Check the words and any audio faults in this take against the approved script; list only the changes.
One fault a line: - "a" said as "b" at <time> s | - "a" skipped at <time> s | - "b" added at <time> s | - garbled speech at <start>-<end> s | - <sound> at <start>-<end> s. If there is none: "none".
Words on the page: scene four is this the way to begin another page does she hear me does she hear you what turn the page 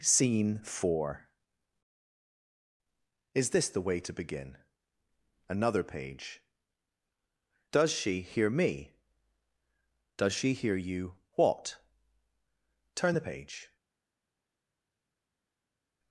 none